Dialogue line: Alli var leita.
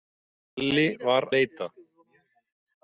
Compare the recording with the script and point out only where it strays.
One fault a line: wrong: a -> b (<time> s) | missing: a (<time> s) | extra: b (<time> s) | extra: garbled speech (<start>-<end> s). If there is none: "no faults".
no faults